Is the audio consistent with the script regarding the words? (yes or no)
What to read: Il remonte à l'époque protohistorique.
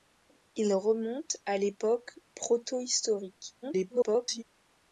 no